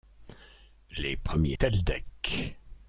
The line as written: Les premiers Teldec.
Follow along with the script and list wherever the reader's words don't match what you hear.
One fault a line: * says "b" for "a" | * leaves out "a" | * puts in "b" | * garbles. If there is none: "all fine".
all fine